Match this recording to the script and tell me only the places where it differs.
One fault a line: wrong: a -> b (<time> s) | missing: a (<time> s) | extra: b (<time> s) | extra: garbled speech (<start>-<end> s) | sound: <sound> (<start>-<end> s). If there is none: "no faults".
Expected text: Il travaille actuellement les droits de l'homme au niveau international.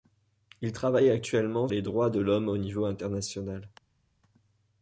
no faults